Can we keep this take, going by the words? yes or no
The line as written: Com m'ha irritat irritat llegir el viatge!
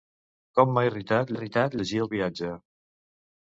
yes